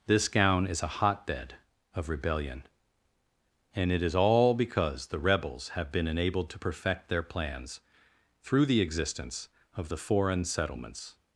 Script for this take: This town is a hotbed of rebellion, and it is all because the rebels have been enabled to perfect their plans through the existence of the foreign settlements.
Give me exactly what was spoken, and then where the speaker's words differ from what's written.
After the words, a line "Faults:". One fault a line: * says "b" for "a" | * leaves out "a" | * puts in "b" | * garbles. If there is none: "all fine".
This gown is a hotbed of rebellion, and it is all because the rebels have been enabled to perfect their plans through the existence of the foreign settlements.
Faults:
* says "gown" for "town"